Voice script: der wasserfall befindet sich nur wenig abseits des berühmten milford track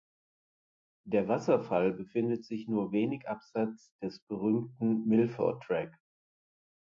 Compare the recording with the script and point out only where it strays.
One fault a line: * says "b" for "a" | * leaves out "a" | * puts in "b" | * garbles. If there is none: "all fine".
all fine